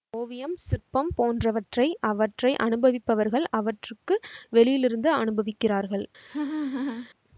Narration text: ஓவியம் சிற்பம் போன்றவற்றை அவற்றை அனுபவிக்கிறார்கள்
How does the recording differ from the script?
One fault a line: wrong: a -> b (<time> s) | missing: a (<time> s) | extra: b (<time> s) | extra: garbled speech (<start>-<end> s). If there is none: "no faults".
extra: அனுபவிப்பவர்கள் அவற்றுக்கு வெளியிலிருந்து (2.6 s)